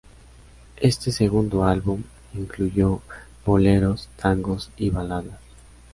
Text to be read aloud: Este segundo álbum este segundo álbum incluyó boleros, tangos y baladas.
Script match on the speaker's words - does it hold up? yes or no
no